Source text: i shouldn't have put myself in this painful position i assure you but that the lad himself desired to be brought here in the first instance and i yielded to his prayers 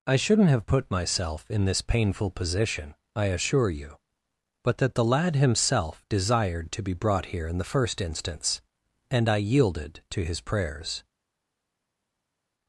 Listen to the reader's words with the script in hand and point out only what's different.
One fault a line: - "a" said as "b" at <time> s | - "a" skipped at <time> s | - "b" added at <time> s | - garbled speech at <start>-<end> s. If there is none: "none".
none